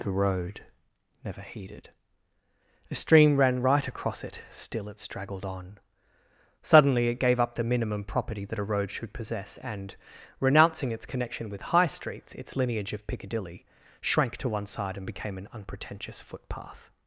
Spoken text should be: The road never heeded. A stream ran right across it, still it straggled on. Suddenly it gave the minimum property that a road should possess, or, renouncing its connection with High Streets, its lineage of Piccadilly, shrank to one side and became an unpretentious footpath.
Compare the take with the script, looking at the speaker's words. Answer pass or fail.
fail